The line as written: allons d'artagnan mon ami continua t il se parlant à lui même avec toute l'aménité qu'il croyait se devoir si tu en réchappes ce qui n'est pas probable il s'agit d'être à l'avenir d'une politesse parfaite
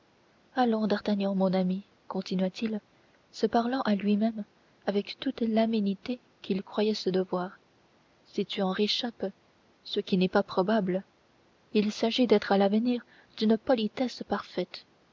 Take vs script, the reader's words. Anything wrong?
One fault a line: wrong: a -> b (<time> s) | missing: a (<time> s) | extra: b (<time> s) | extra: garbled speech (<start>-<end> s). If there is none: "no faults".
no faults